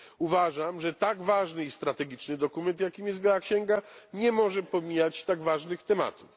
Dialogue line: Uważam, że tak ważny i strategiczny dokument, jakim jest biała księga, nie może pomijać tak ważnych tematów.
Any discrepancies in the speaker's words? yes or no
no